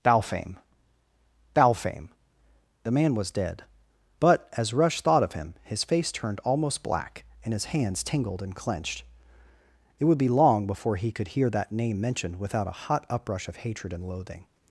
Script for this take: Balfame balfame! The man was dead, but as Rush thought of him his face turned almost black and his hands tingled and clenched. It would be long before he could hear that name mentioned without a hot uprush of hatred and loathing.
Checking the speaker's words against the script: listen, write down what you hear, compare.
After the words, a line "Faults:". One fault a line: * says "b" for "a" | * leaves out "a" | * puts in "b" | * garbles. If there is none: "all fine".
Balfame balfame! The man was dead, but as Rush thought of him his face turned almost black and his hands tingled and clenched. It would be long before he could hear that name mentioned without a hot uprush of hatred and loathing.
Faults:
all fine